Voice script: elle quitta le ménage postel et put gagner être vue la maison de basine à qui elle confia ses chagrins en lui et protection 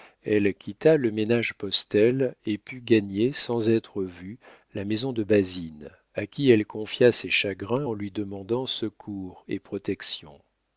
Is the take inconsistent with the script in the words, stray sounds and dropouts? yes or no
yes